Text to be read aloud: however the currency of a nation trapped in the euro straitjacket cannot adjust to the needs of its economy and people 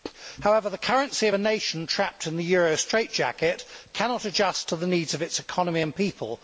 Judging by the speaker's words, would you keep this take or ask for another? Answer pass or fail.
pass